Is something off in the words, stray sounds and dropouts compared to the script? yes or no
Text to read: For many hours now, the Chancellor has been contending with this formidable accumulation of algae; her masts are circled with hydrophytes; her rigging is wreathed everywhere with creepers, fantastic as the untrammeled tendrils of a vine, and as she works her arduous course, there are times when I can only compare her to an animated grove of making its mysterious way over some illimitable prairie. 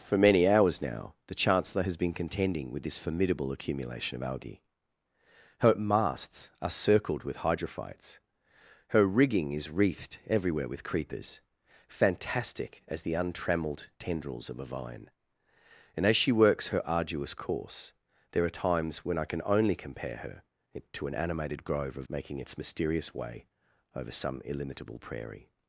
no